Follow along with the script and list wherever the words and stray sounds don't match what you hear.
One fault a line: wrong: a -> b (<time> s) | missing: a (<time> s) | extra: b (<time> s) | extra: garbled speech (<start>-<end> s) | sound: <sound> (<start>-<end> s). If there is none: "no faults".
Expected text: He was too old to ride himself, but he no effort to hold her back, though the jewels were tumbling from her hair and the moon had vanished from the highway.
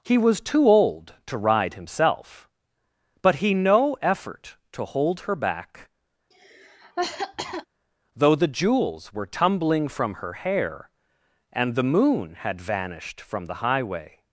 sound: cough (6.3-7.7 s)